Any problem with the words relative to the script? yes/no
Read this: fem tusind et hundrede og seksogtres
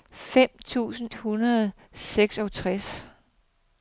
yes